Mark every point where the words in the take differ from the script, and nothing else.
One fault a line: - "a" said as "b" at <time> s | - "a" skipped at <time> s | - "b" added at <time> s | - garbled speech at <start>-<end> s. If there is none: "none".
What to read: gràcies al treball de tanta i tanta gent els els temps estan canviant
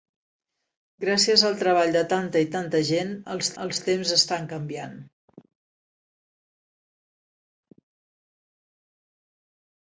none